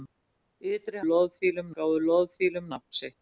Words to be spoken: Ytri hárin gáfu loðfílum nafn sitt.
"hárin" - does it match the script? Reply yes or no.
no